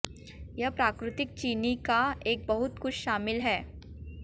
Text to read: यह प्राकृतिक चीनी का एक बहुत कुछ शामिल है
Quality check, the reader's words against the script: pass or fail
pass